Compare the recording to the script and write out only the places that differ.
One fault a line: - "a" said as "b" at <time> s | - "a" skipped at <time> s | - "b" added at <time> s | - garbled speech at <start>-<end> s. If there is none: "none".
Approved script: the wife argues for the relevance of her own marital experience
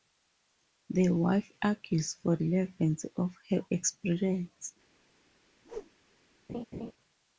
- "the" skipped at 2.4 s
- "own marital" skipped at 3.6 s